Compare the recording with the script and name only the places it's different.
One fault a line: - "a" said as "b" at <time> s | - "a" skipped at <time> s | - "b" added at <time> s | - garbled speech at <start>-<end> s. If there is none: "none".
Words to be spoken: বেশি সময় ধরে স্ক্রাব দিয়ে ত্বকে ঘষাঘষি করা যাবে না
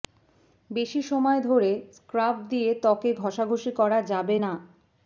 none